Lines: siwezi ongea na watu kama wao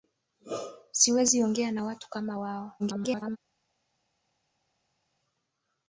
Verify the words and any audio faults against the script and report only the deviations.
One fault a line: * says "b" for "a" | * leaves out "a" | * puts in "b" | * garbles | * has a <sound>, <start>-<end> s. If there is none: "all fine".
* garbles